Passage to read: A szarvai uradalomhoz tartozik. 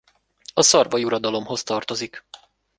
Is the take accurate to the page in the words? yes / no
yes